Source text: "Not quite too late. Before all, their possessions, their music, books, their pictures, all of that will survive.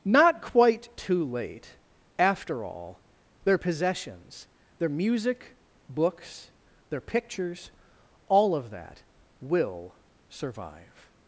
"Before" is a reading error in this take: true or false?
true